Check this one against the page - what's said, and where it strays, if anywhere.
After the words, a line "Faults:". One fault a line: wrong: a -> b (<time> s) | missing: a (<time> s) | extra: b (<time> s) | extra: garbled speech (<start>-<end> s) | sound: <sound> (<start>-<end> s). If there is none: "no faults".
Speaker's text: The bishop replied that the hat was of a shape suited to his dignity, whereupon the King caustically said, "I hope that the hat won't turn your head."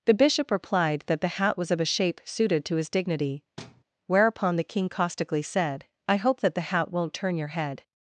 The bishop replied that the hat was of a shape suited to his dignity, whereupon the King caustically said, "I hope that the hat won't turn your head."
Faults:
sound: thud (3.6-3.8 s)